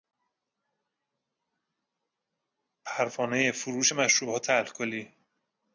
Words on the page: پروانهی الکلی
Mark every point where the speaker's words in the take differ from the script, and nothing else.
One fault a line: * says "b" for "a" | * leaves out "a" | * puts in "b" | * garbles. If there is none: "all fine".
* puts in "فروش مشروبات"